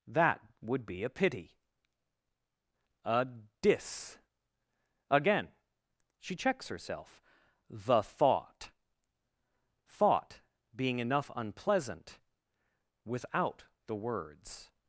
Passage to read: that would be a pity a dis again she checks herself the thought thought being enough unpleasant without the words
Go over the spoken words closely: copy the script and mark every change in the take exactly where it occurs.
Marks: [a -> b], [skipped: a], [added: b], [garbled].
that would be a pity a dis again she checks herself the thought thought being enough unpleasant without the words